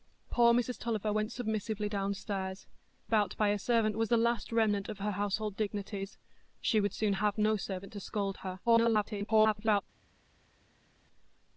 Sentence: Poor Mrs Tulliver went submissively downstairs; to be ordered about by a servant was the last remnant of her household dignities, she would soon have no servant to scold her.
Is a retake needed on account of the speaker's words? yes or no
yes